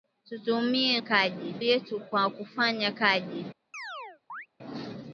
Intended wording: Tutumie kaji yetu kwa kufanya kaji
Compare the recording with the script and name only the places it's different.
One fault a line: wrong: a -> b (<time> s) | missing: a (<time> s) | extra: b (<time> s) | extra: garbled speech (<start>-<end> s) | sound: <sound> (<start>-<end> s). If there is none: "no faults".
sound: chirp (3.7-4.5 s)